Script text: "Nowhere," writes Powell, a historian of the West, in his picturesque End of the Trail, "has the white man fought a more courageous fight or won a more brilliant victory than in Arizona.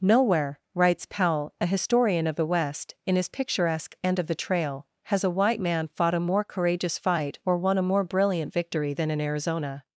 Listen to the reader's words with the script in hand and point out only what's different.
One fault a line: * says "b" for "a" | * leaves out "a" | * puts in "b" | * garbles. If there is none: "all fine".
* says "a" for "the"